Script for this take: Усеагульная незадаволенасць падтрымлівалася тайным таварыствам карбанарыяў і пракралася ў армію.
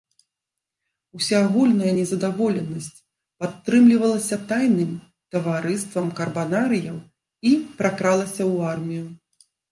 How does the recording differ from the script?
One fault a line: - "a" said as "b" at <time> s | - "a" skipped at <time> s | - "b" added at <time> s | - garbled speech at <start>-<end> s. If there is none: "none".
none